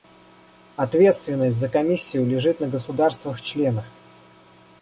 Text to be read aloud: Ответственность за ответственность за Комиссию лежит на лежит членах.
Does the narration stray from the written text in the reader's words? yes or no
yes